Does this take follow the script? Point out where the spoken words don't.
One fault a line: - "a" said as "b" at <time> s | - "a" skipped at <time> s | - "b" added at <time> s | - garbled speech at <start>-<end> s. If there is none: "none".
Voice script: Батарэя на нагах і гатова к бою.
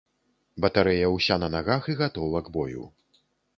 - "ўся" added at 1.2 s